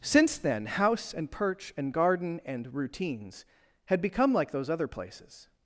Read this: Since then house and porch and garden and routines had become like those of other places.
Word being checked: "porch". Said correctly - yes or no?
no